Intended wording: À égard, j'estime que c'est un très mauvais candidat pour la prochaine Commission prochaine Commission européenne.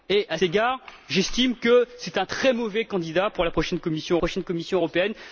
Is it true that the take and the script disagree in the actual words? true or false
false